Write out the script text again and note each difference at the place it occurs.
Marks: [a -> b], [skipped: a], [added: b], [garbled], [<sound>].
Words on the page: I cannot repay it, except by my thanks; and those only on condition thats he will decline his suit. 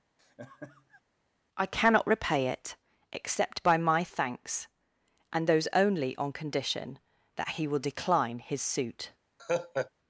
[laugh] I cannot repay it, except by my thanks; and those only on condition [thats -> that] he will decline his suit. [laugh]